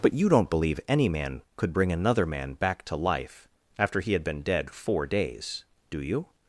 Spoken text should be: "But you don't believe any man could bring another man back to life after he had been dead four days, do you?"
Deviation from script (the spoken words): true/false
false